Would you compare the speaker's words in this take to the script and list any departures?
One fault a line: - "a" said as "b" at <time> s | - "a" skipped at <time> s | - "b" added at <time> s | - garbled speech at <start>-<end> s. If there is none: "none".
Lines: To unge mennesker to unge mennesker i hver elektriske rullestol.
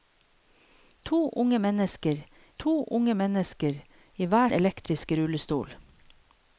none